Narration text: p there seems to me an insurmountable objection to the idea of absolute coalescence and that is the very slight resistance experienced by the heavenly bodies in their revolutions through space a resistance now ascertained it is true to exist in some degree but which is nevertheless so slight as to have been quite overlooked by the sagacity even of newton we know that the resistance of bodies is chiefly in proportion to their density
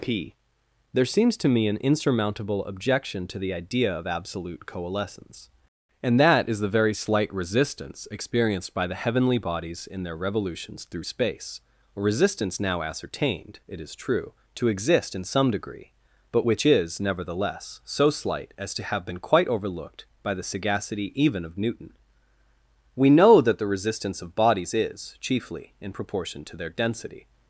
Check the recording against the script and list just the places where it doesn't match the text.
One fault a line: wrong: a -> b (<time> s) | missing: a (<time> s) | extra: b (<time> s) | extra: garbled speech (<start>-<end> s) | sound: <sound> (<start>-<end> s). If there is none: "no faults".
no faults